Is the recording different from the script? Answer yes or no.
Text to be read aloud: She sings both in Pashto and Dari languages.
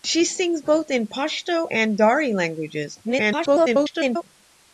yes